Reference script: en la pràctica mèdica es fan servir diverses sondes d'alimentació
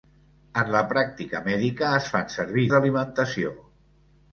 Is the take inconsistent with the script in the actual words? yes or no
yes